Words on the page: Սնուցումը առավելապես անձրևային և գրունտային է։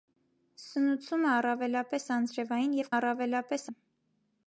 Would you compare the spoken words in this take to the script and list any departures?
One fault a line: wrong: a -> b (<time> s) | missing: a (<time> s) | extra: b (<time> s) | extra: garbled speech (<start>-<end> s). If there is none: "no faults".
wrong: գրունտային -> առավելապես (2.9 s)